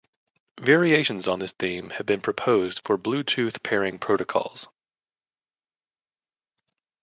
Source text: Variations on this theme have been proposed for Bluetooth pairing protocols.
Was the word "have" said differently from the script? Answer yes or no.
no